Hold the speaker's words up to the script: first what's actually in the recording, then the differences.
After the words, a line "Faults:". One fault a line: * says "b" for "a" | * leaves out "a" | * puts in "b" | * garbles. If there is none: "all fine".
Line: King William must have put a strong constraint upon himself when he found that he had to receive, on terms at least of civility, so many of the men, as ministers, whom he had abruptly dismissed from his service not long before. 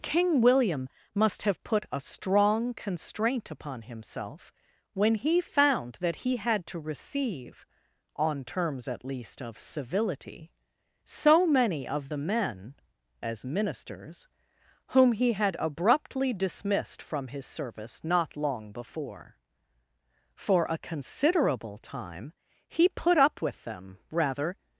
King William must have put a strong constraint upon himself when he found that he had to receive, on terms at least of civility, so many of the men, as ministers, whom he had abruptly dismissed from his service not long before. For a considerable time he put up with them rather
Faults:
* puts in "For a considerable time he put up with them rather"